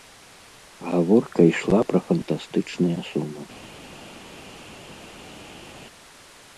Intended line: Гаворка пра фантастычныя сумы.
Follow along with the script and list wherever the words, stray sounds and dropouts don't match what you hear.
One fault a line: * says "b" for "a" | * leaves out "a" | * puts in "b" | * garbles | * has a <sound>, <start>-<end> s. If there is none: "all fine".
* puts in "ішла"